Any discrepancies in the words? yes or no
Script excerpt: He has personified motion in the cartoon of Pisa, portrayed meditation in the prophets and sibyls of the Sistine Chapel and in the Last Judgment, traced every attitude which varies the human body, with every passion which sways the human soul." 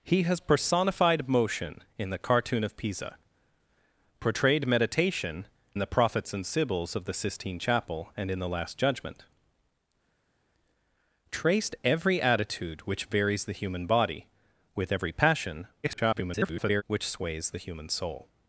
yes